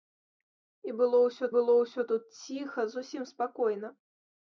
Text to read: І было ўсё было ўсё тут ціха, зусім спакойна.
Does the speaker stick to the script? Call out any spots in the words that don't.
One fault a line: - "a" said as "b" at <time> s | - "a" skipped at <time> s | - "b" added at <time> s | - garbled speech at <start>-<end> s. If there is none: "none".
none